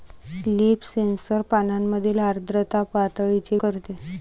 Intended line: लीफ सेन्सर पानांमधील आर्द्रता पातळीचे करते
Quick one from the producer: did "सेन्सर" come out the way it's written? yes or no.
yes